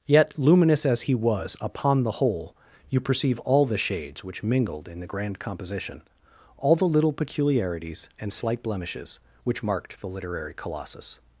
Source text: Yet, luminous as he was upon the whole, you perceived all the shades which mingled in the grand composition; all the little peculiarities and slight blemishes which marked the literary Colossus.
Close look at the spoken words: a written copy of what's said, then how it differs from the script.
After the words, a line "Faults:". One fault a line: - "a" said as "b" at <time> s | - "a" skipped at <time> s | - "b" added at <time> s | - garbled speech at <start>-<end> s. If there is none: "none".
Yet, luminous as he was upon the whole, you perceive all the shades which mingled in the grand composition; all the little peculiarities and slight blemishes which marked the literary Colossus.
Faults:
- "perceived" said as "perceive" at 3.0 s